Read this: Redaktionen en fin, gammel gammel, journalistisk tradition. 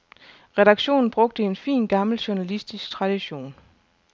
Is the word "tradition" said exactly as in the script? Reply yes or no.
yes